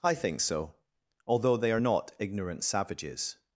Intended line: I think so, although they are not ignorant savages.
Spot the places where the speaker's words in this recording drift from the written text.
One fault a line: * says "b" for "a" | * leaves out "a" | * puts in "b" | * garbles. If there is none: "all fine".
all fine